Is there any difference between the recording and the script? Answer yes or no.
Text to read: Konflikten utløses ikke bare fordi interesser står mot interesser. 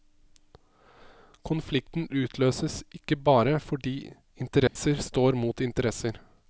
no